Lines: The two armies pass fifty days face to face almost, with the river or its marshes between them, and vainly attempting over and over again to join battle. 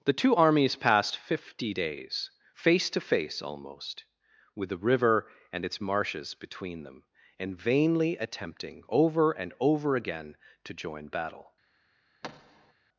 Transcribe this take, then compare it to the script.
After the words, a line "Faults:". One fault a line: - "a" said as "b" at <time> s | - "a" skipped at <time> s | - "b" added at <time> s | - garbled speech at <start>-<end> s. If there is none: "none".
The two armies passed fifty days face to face almost, with the river and its marshes between them, and vainly attempting over and over again to join battle.
Faults:
- "pass" said as "passed" at 0.8 s
- "or" said as "and" at 5.5 s